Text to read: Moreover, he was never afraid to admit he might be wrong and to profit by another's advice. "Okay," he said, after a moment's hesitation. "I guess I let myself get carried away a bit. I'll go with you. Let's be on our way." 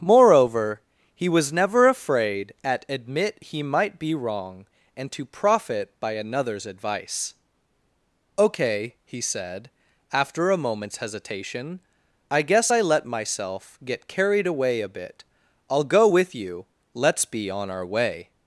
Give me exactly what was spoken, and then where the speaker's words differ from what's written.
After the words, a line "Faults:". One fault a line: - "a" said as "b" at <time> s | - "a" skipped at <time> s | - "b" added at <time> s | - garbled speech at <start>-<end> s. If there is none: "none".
Moreover, he was never afraid at admit he might be wrong and to profit by another's advice. "Okay," he said, after a moment's hesitation. "I guess I let myself get carried away a bit. I'll go with you. Let's be on our way."
Faults:
- "to" said as "at" at 2.6 s